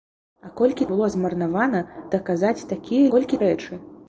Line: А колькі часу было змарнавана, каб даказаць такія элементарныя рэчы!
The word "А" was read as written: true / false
true